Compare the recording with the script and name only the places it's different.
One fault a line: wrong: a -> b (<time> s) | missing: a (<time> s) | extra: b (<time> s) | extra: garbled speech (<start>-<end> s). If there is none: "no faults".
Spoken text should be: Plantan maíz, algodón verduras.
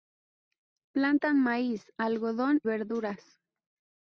no faults